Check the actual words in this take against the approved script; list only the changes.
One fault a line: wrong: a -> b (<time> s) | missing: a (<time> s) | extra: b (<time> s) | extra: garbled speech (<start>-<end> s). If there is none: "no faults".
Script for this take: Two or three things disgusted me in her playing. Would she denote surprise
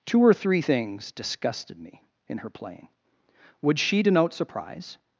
no faults